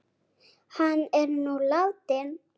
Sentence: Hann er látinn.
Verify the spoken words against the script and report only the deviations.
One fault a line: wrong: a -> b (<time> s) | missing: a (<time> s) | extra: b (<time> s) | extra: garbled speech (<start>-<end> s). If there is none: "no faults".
extra: nú (1.4 s)